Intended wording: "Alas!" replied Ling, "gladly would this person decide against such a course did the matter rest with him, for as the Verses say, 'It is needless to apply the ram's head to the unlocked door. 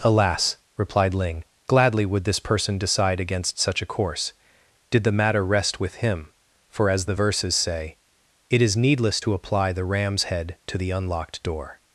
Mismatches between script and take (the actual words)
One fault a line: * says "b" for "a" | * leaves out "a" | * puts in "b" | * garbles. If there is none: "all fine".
all fine